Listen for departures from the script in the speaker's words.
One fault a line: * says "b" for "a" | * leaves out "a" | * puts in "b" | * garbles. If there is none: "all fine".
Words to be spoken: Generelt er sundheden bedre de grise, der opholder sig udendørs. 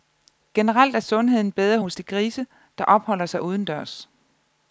* puts in "hos"